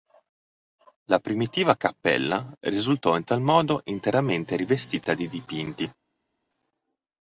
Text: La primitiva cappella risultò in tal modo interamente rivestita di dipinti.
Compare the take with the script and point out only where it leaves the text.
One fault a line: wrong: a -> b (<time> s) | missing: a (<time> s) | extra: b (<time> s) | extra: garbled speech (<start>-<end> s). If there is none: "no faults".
no faults